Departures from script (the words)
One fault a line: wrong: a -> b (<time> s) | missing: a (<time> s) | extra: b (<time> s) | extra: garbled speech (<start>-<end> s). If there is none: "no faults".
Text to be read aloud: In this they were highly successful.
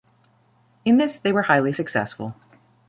no faults